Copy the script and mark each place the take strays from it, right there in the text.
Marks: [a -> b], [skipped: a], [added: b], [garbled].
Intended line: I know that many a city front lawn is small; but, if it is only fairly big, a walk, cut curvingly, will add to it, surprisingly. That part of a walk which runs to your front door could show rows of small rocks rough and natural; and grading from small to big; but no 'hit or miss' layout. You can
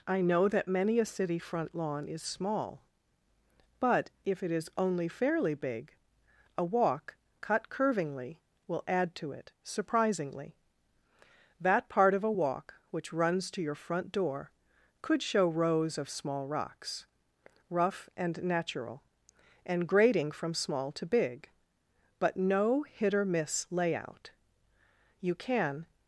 I know that many a city front lawn is small; but, if it is only fairly big, a walk, cut curvingly, will add to it, surprisingly. That part of a walk which runs to your front door could show rows of small rocks rough and natural; and grading from small to big; but no 'hit or miss' layout. You can